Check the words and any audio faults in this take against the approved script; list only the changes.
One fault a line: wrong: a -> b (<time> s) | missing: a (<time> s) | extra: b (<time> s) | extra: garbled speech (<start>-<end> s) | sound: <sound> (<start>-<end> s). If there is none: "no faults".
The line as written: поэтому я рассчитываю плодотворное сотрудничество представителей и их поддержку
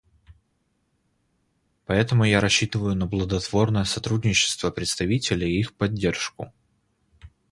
extra: на (2.9 s)